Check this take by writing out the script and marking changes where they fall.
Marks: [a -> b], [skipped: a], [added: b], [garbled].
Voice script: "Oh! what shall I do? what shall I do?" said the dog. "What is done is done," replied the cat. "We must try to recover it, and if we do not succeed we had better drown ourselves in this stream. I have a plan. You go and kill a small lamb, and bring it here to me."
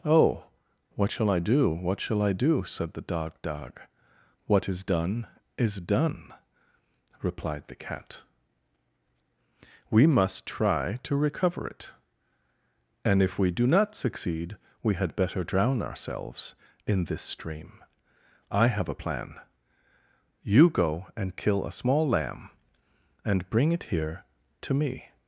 "Oh! what shall I do? what shall I do?" said the dog. [added: dog] "What is done is done," replied the cat. "We must try to recover it, and if we do not succeed we had better drown ourselves in this stream. I have a plan. You go and kill a small lamb, and bring it here to me."